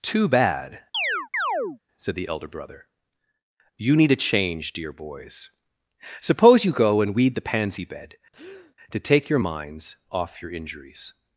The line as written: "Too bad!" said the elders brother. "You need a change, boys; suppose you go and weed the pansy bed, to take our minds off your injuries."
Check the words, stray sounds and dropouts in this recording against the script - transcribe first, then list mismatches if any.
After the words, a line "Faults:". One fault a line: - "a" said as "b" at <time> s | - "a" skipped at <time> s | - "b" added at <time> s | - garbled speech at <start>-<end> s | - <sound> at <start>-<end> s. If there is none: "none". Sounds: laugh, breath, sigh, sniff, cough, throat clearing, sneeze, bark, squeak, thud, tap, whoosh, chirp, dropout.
"Too bad!" said the elder brother. "You need a change, dear boys; suppose you go and weed the pansy bed, to take your minds off your injuries."
Faults:
- chirp at 0.9-1.8 s
- "elders" said as "elder" at 2.3 s
- "dear" added at 4.7 s
- breath at 8.3-8.8 s
- "our" said as "your" at 9.3 s